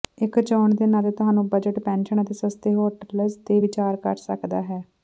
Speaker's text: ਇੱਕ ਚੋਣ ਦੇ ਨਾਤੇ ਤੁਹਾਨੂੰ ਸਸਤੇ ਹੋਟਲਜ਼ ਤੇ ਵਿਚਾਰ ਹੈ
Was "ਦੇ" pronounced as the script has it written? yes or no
yes